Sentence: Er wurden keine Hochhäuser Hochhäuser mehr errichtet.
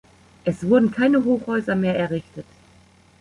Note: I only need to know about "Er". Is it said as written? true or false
false